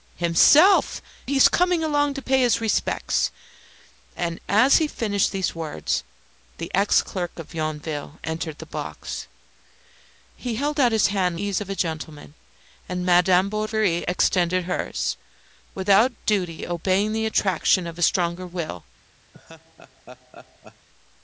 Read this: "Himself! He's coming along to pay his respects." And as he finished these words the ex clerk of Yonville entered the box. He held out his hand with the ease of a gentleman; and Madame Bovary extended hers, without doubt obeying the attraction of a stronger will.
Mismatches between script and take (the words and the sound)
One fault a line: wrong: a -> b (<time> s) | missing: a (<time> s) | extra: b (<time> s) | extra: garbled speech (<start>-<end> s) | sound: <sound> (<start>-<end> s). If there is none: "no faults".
missing: with the (11.4 s)
sound: laugh (19.3-20.9 s)